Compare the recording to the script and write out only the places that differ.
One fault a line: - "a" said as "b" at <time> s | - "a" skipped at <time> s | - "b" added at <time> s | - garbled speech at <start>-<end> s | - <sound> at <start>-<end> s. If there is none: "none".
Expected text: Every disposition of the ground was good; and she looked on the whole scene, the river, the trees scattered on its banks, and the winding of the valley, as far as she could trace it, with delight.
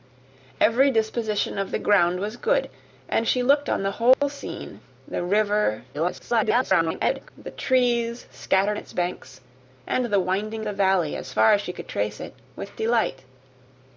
- dropout at 4.1-4.2 s
- garbled speech at 5.9-7.3 s
- "on" skipped at 8.8 s
- "of" skipped at 10.7 s